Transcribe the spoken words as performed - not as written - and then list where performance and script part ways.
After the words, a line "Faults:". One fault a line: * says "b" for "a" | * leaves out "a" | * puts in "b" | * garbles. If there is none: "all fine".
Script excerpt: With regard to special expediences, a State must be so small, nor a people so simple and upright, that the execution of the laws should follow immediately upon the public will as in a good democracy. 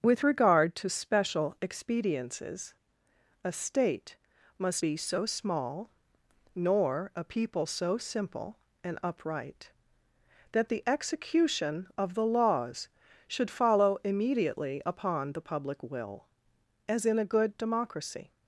With regard to special expediences, a State must be so small, nor a people so simple and upright, that the execution of the laws should follow immediately upon the public will as in a good democracy.
Faults:
all fine